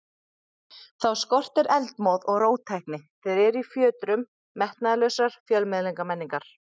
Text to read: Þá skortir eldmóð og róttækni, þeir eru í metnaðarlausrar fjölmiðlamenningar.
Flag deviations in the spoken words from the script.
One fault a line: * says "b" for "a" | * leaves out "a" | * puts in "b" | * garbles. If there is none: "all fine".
* puts in "fjötrum"